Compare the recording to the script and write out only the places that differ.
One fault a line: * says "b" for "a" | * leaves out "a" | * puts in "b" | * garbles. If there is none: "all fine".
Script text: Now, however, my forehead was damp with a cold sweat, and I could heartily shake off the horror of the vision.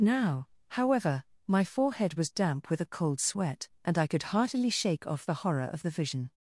all fine